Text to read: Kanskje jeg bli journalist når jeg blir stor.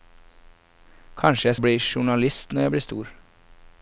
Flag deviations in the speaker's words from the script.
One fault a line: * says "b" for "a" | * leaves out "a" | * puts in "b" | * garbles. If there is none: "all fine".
all fine